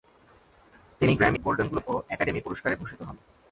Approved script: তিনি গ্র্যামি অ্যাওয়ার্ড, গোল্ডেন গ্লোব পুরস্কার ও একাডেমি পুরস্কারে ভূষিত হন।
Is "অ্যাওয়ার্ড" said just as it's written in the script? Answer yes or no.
no